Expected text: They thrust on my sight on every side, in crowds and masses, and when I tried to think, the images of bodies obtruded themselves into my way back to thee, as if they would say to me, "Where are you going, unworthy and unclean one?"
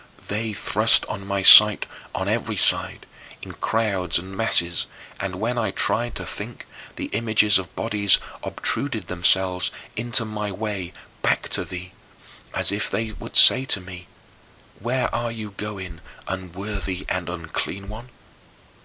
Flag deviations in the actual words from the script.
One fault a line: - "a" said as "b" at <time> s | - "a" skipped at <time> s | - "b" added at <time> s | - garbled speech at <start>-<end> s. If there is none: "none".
none